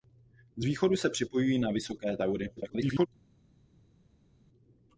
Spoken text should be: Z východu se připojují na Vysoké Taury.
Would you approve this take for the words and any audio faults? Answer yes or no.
no